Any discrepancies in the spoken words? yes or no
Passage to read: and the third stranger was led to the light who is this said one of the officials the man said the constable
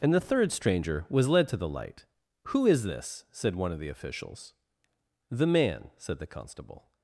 no